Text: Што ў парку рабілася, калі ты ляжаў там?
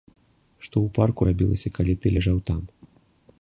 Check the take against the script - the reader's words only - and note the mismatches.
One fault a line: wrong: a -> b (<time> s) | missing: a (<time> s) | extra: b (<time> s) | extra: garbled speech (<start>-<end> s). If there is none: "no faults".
no faults